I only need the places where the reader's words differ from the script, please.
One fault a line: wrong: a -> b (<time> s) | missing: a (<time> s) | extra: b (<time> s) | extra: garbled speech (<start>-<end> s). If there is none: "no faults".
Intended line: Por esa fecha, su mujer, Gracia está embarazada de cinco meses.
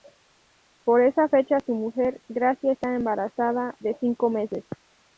no faults